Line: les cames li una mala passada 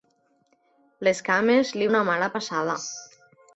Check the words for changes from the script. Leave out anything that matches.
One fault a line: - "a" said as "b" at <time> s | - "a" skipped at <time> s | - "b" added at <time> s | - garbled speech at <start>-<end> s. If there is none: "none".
none